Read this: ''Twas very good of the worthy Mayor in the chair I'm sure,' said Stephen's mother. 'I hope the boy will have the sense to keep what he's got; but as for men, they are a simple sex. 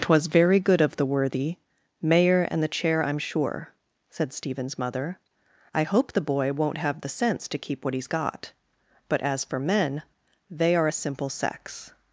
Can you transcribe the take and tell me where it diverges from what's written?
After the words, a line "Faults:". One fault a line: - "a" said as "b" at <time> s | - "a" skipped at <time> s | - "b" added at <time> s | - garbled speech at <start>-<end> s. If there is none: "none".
''Twas very good of the worthy Mayor and the chair I'm sure,' said Stephen's mother. 'I hope the boy won't have the sense to keep what he's got; but as for men, they are a simple sex.
Faults:
- "in" said as "and" at 2.5 s
- "will" said as "won't" at 6.5 s